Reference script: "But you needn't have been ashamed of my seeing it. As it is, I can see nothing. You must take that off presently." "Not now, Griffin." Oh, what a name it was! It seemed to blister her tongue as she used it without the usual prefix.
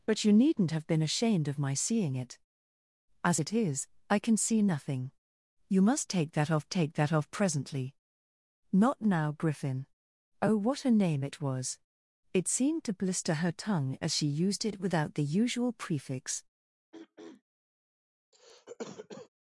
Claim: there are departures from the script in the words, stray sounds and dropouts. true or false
true